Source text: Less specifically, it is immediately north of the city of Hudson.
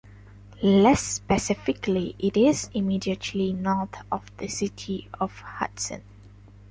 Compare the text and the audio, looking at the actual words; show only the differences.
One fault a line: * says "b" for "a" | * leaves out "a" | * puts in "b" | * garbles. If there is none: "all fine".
all fine